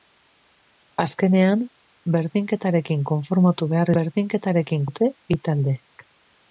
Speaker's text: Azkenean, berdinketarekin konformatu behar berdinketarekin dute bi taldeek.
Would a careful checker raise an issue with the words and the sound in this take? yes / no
no